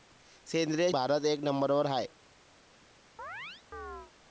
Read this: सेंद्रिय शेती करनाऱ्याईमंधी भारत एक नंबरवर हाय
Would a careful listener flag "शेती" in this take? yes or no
yes